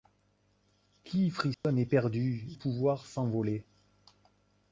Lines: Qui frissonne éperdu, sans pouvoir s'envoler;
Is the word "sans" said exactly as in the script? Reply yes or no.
no